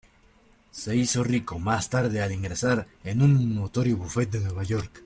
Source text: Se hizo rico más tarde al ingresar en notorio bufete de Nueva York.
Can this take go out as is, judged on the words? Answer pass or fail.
fail